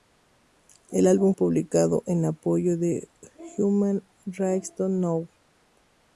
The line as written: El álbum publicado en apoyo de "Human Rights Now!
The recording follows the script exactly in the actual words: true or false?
true